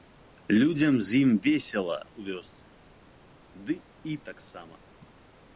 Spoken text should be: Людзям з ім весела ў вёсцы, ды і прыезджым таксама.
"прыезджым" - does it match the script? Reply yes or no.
no